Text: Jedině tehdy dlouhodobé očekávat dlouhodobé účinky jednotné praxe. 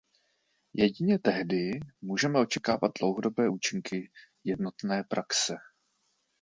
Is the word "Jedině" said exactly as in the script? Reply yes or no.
yes